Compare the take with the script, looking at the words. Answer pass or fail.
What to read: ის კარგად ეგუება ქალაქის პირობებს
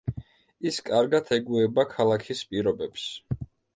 pass